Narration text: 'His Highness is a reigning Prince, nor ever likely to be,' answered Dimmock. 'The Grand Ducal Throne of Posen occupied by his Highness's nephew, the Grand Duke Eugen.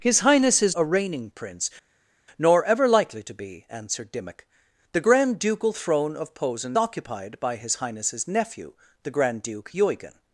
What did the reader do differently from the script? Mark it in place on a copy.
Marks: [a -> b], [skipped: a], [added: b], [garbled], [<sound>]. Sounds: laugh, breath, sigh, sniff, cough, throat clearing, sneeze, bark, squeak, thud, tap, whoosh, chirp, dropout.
'His Highness is a reigning Prince, nor ever likely to be,' answered Dimmock. 'The Grand Ducal Throne of Posen occupied by his Highness's nephew, the Grand Duke Eugen.